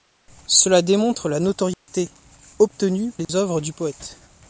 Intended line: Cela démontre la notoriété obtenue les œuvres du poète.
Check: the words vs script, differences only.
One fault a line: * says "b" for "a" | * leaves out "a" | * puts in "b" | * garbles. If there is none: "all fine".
all fine